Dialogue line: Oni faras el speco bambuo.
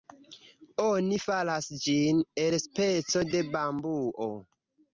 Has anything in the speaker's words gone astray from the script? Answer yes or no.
yes